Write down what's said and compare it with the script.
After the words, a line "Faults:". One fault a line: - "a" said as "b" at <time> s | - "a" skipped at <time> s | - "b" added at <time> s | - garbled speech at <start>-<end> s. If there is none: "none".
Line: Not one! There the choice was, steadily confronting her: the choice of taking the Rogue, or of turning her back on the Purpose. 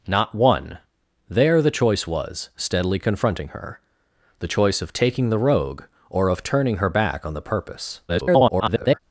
Not one! There the choice was, steadily confronting her: the choice of taking the Rogue, or of turning her back on the Purpose. [garbled]
Faults:
- garbled speech at 8.1-9.0 s